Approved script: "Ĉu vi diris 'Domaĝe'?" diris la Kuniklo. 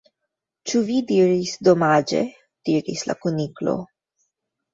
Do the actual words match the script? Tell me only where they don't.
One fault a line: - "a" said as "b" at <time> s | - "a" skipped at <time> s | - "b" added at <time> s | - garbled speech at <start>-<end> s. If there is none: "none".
none